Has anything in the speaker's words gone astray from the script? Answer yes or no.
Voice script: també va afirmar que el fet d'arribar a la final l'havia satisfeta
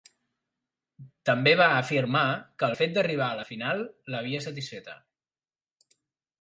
no